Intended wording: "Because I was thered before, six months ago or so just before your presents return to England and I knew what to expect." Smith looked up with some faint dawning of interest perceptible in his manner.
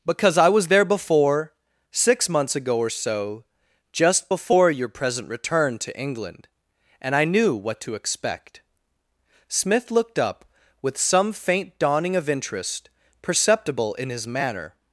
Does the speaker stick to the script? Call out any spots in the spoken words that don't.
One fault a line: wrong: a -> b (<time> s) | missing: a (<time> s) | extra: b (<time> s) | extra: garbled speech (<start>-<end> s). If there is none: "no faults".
wrong: thered -> there (0.7 s)
wrong: presents -> present (4.9 s)